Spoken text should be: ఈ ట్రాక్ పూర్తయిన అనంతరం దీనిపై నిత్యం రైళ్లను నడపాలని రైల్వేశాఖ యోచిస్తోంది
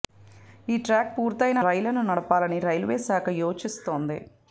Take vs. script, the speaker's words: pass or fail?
fail